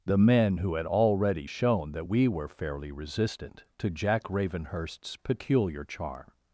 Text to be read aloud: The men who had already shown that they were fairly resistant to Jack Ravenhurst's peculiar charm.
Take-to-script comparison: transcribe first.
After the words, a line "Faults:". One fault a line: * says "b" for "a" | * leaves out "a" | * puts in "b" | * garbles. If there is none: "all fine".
The men who had already shown that we were fairly resistant to Jack Ravenhurst's peculiar charm.
Faults:
* says "we" for "they"